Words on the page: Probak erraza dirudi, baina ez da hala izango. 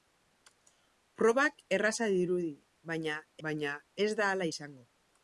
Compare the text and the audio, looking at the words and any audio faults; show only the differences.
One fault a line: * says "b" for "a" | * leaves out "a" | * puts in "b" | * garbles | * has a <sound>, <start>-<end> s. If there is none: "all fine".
* puts in "baina"